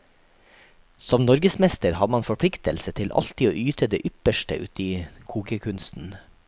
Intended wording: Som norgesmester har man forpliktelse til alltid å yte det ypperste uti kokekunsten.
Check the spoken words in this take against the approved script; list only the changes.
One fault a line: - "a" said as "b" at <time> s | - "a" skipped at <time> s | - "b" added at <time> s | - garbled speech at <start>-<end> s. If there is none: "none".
none